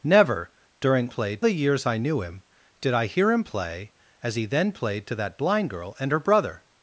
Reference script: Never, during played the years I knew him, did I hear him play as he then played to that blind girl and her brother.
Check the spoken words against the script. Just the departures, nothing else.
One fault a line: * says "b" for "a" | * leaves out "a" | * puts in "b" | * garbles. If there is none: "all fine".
all fine